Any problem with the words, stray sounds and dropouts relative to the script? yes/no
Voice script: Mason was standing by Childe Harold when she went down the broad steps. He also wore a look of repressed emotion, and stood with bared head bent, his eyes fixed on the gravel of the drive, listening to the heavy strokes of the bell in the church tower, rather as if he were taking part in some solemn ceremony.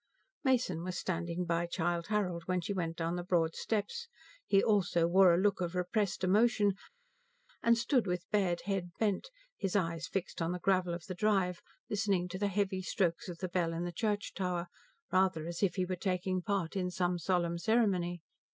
no